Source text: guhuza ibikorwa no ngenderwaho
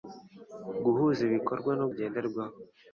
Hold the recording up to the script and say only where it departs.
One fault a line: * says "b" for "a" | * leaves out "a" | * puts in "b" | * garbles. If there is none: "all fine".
all fine